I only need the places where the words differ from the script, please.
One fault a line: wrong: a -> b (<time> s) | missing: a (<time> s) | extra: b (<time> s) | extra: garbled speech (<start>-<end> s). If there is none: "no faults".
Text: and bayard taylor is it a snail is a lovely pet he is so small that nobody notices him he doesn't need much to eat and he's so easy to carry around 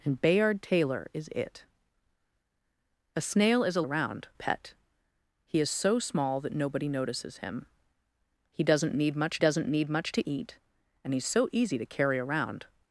wrong: lovely -> around (3.8 s)
extra: doesn't need much (9.4 s)